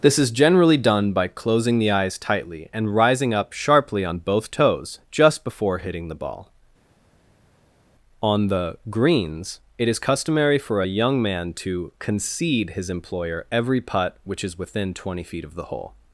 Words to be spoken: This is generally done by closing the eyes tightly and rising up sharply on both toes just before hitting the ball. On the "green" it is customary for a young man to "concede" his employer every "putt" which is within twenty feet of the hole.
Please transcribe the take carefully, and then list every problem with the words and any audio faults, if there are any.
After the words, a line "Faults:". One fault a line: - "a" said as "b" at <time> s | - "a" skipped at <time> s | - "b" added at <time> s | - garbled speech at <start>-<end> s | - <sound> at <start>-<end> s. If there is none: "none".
This is generally done by closing the eyes tightly and rising up sharply on both toes just before hitting the ball. On the "greens" it is customary for a young man to "concede" his employer every "putt" which is within twenty feet of the hole.
Faults:
- "green" said as "greens" at 8.9 s